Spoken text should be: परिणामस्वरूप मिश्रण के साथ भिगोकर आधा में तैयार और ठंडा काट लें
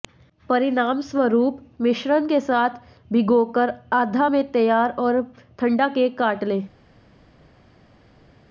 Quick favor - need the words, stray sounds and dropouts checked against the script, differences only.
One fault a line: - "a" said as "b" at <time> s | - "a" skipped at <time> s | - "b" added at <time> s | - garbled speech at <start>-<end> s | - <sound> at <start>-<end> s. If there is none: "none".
- "केक" added at 5.9 s